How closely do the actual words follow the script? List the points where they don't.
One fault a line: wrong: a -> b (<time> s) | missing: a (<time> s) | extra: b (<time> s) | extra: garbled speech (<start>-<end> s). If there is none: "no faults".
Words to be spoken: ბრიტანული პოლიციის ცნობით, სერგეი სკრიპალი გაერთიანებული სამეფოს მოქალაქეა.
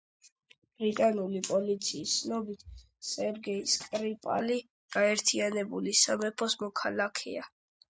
no faults